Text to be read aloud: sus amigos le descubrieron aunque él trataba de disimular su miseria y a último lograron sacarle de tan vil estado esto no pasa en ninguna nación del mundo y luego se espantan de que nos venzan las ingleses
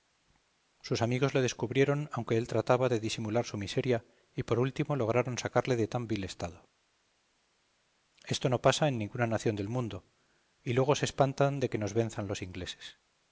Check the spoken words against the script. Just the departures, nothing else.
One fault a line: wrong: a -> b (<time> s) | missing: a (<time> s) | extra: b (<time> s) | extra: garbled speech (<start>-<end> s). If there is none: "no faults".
wrong: a -> por (4.4 s)
wrong: las -> los (12.3 s)